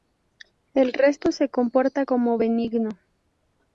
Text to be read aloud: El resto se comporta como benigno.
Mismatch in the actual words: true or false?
false